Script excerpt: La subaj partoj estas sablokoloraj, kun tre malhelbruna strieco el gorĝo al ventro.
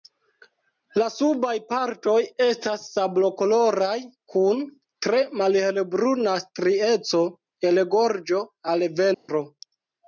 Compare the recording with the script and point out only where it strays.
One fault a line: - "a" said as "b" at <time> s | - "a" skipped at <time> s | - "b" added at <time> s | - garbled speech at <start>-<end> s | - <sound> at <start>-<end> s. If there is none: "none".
- dropout at 9.1-9.3 s